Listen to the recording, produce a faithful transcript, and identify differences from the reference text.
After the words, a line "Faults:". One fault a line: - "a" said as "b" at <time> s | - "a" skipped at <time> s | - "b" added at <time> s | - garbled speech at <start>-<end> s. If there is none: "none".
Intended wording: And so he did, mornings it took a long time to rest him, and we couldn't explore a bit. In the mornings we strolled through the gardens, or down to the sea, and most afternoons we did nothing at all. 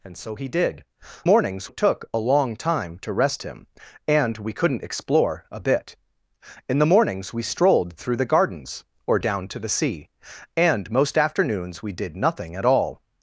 And so he did, mornings it took a long time to rest him, and we couldn't explore a bit. In the mornings we strolled through the gardens, or down to the sea, and most afternoons we did nothing at all.
Faults:
none